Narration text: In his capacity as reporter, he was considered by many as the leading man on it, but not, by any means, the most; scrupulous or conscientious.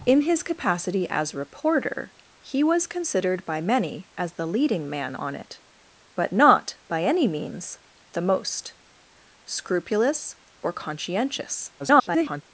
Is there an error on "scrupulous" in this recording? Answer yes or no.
no